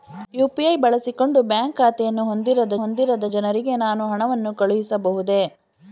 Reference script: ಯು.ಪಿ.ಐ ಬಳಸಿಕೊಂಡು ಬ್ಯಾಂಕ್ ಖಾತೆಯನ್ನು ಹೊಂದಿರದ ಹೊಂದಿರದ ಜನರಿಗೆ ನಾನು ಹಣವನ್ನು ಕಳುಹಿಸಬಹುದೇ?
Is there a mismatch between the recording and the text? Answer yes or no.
no